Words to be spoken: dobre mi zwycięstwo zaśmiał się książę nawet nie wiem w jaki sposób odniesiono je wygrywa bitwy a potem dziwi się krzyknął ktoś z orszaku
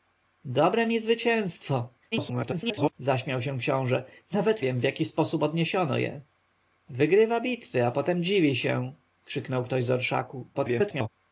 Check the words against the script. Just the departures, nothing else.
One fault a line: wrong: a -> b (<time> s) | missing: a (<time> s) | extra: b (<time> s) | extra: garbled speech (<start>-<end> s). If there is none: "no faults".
extra: garbled speech (2.1-2.9 s)
missing: nie (4.6 s)
extra: garbled speech (10.5-11.1 s)